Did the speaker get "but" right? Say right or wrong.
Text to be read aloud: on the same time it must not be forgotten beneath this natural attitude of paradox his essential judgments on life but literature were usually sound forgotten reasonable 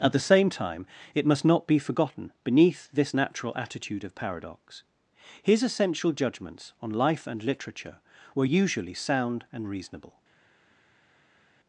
wrong